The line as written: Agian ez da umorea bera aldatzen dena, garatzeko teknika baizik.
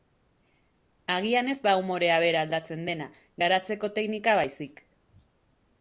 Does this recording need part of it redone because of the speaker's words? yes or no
no